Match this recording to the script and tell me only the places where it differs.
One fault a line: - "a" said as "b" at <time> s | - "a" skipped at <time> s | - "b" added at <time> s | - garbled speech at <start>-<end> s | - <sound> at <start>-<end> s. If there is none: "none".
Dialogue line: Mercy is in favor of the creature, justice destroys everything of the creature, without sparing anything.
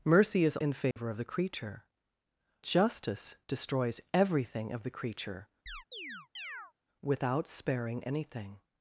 - dropout at 0.9-1.0 s
- chirp at 5.7-6.7 s